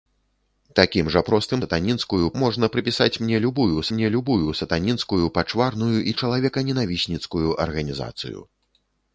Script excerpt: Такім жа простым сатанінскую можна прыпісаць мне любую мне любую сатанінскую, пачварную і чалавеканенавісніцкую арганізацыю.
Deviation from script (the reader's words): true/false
false